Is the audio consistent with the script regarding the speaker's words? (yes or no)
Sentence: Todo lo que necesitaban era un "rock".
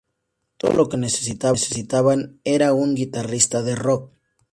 no